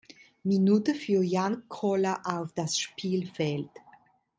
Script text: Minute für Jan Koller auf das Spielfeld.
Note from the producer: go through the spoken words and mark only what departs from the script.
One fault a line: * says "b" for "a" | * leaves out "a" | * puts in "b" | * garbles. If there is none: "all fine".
all fine